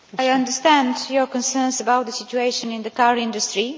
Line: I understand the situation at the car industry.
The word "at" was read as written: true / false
false